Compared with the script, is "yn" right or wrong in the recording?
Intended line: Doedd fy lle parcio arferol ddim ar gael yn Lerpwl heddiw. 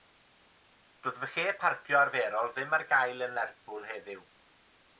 right